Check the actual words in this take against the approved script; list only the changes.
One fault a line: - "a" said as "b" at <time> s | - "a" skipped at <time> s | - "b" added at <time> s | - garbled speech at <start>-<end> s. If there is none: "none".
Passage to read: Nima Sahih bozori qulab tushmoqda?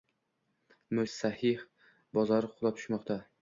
none